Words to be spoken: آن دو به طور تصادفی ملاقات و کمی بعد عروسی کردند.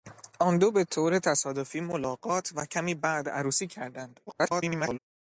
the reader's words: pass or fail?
fail